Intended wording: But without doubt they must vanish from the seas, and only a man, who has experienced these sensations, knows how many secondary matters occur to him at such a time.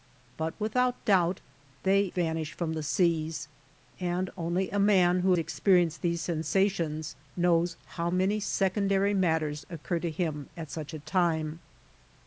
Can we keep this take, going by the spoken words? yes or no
no